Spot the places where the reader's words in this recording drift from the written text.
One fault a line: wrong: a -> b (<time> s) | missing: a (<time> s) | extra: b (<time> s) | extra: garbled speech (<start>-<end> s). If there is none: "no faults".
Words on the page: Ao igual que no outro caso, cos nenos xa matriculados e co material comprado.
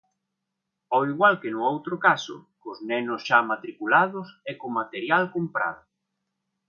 no faults